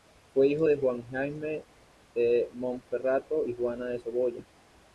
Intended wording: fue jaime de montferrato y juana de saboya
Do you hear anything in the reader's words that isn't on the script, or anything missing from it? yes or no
yes